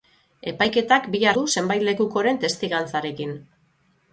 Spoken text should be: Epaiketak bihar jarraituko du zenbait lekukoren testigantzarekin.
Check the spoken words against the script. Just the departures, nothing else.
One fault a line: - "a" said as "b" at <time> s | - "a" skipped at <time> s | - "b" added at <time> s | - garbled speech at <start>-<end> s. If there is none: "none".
- "jarraituko" skipped at 1.4 s